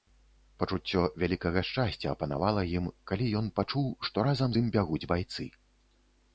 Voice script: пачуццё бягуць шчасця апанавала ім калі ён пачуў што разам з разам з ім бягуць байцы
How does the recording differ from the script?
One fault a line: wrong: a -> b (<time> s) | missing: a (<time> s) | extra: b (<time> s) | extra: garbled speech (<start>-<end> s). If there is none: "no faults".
wrong: бягуць -> вялікага (1.2 s)
missing: разам з (4.6 s)